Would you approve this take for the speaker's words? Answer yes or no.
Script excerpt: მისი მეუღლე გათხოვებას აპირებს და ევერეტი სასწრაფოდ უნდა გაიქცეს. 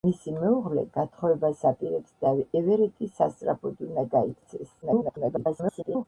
no